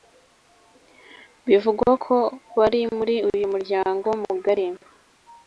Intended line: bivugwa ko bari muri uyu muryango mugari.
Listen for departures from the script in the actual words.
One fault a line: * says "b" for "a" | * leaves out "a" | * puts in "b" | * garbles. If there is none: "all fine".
all fine